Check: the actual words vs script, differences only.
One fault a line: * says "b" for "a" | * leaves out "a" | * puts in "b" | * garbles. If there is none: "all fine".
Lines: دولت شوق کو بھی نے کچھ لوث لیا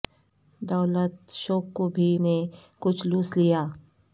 all fine